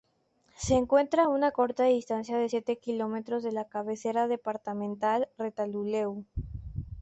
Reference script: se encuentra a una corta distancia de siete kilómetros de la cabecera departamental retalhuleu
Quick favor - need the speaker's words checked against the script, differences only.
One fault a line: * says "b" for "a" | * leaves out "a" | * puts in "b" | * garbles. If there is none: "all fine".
all fine